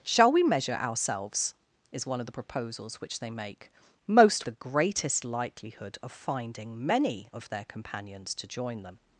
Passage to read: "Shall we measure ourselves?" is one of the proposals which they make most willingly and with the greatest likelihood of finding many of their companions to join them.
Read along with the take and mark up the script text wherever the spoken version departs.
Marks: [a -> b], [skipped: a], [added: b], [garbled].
"Shall we measure ourselves?" is one of the proposals which they make most [skipped: willingly and with] the greatest likelihood of finding many of their companions to join them.